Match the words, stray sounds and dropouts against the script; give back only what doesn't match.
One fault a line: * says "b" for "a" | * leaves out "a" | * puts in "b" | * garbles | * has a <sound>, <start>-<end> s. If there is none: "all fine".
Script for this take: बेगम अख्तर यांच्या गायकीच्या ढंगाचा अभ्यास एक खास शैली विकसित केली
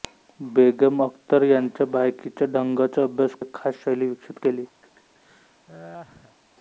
* has a laugh, 4.8-6.4 s